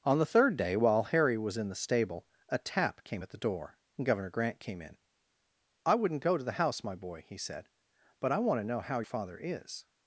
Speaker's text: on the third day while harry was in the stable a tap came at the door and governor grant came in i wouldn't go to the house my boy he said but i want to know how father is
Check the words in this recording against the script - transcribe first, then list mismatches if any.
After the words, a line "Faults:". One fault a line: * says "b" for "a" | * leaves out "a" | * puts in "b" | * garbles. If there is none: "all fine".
on the third day while harry was in the stable a tap came at the door and governor grant came in i wouldn't go to the house my boy he said but i want to know how father is
Faults:
all fine